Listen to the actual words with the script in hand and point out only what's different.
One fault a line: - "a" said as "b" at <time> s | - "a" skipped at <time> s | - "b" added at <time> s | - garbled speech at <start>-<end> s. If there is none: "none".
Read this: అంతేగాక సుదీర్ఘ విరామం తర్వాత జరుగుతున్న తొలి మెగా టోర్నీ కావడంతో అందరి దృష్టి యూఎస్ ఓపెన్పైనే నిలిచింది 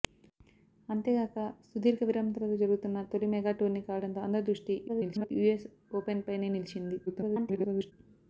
- garbled speech at 4.9-5.3 s
- garbled speech at 7.1-7.9 s